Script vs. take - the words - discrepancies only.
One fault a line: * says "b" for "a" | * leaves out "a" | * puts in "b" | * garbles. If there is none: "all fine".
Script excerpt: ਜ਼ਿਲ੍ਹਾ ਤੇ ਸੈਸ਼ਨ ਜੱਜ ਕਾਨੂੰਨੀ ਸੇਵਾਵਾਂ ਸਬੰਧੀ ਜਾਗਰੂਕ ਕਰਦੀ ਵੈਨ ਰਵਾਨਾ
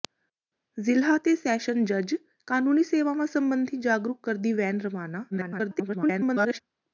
* garbles